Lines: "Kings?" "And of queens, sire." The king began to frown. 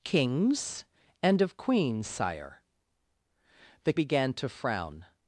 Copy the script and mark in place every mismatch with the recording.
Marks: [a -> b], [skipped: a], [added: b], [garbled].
"Kings?" "And of queens, sire." The [skipped: king] began to frown.